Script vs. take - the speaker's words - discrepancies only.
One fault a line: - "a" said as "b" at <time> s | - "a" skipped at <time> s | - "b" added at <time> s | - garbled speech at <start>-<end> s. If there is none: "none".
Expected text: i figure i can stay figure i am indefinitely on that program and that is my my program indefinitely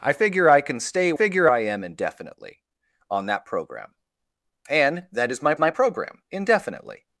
none